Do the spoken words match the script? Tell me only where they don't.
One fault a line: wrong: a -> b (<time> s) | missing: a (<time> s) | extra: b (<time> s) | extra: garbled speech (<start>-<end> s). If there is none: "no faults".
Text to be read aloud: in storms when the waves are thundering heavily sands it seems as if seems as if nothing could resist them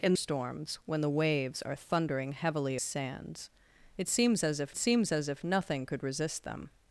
no faults